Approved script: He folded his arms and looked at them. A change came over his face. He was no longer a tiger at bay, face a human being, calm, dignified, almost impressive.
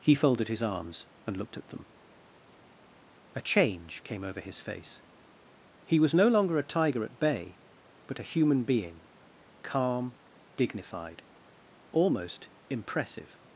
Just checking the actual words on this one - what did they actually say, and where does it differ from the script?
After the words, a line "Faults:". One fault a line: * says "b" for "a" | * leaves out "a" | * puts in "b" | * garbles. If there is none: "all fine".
He folded his arms and looked at them. A change came over his face. He was no longer a tiger at bay, but a human being, calm, dignified, almost impressive.
Faults:
* says "but" for "face"